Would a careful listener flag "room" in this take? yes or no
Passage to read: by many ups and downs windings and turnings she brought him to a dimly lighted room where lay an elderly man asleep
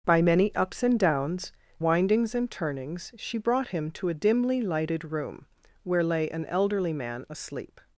no